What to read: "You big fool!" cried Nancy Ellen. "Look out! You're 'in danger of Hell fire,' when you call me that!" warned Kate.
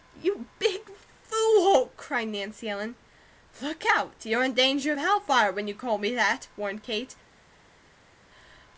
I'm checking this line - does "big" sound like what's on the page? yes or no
yes